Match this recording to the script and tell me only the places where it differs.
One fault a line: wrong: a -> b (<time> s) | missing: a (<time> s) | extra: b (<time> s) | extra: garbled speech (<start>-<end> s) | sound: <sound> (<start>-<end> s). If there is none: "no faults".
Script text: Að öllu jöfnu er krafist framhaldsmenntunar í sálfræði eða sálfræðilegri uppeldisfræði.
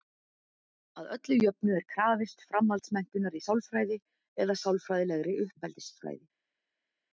no faults